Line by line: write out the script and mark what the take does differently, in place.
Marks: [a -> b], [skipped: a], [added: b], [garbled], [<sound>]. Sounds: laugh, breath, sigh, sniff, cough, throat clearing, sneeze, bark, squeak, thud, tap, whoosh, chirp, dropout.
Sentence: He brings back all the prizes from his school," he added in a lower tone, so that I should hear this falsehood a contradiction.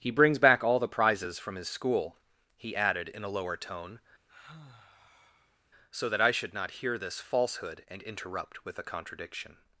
He brings back all the prizes from his school," he added in a lower tone, [sigh] so that I should [added: not] hear this falsehood [added: and interrupt with] a contradiction.